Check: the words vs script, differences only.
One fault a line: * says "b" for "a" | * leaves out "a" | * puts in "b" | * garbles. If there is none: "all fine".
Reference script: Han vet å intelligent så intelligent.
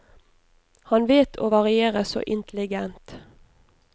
* says "variere" for "intelligent"